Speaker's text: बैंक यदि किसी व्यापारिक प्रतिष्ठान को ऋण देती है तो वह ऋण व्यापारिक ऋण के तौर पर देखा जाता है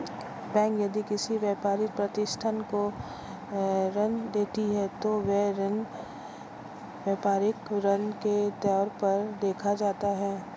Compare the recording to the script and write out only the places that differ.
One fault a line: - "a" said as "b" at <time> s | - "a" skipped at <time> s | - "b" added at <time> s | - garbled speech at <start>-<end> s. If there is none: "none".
none